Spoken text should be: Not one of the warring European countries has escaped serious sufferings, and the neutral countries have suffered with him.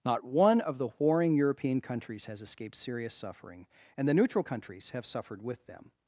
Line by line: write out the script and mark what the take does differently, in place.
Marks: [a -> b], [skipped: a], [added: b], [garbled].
Not one of the warring European countries has escaped serious [sufferings, -> suffering] and the neutral countries have suffered with [him. -> them]